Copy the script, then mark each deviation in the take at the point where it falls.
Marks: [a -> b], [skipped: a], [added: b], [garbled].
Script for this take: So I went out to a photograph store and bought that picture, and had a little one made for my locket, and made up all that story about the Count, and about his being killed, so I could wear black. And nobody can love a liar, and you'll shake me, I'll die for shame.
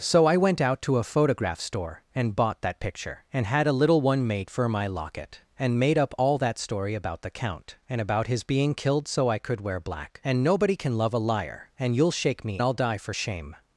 So I went out to a photograph store and bought that picture, and had a little one made for my locket, and made up all that story about the Count, and about his being killed, so I could wear black. And nobody can love a liar, and you'll shake me, I'll die for shame.